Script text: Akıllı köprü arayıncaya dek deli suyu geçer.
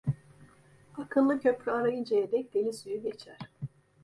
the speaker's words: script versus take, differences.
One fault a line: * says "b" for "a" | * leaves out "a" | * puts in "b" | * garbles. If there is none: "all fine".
all fine